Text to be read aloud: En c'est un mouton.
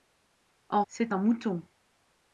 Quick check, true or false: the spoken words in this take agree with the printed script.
true